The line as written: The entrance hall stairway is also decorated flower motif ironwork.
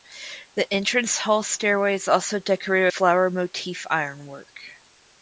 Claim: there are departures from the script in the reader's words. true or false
false